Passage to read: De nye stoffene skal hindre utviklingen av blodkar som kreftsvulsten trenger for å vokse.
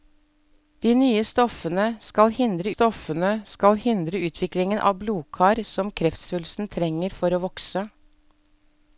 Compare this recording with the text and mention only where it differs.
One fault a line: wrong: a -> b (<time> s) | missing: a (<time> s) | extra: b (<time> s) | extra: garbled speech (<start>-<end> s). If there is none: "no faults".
extra: stoffene skal hindre (2.7 s)